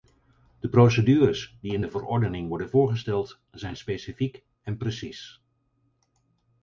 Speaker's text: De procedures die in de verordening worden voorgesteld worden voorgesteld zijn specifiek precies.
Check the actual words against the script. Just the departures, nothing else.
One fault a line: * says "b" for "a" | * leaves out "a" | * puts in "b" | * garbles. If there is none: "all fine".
* leaves out "worden voorgesteld"
* puts in "en"